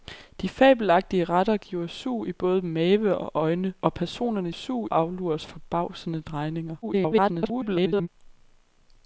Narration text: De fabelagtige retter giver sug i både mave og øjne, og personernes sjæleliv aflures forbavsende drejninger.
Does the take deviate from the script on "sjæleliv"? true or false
true